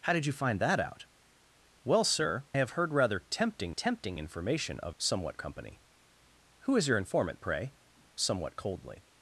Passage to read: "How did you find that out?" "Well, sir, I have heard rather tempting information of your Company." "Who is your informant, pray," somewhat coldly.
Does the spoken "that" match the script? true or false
true